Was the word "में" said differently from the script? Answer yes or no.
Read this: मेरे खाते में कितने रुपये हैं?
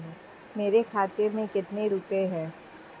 no